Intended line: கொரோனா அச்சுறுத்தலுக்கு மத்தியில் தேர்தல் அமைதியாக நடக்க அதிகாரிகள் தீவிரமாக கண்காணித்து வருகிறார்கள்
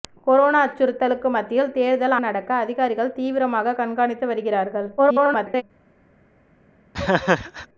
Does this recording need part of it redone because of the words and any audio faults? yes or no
yes